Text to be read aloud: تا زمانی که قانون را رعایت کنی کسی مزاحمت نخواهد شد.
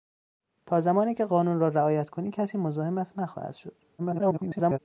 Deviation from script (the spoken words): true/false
true